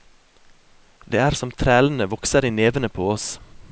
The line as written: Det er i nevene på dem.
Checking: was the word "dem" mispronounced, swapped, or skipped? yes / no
yes